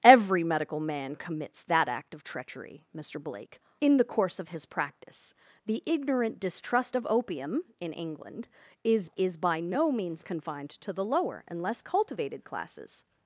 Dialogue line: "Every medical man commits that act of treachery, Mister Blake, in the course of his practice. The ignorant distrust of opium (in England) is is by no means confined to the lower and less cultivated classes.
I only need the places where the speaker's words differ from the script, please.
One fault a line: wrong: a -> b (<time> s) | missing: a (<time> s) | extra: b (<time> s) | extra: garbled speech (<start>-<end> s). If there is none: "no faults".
no faults